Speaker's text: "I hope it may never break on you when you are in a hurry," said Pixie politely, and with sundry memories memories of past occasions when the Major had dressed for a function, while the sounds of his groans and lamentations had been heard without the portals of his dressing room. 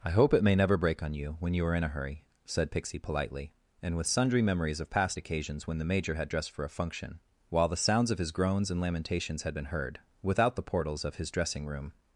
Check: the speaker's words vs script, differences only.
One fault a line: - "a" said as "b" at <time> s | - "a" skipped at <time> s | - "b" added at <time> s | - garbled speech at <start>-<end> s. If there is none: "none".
- "memories" skipped at 4.8 s